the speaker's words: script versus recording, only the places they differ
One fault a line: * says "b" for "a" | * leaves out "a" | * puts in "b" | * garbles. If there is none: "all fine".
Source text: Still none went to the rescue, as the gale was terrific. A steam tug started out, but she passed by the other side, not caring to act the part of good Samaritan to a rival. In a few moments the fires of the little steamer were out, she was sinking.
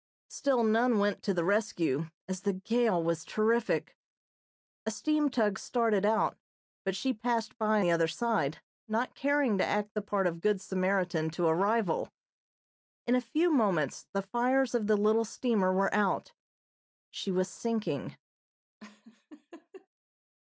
all fine